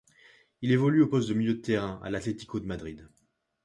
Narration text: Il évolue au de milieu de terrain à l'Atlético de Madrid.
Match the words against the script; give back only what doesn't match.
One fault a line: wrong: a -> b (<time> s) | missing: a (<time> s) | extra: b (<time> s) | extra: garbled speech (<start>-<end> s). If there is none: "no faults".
extra: poste (1.1 s)